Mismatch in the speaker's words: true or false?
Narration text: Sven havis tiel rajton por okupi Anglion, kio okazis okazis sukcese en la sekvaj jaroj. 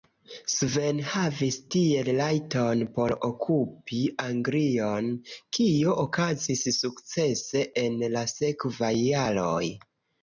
true